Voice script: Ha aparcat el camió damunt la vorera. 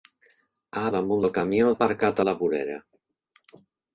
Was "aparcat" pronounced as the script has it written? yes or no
no